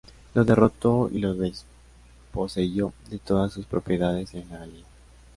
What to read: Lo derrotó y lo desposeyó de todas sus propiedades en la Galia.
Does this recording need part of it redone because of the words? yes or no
no